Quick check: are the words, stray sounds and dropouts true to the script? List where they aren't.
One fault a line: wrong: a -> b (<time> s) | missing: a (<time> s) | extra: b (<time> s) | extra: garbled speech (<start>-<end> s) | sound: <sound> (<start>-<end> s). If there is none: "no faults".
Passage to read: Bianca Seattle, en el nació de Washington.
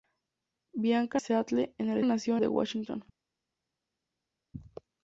no faults